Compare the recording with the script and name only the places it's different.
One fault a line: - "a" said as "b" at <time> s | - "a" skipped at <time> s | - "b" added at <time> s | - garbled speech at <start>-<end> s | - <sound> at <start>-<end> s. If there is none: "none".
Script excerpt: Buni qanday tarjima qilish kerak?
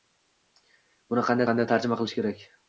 - "qanday" added at 1.5 s